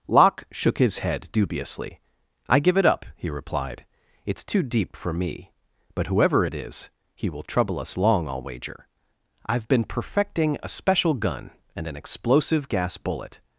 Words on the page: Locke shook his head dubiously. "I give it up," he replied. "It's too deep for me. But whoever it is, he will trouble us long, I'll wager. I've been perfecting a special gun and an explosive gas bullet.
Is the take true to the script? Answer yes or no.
yes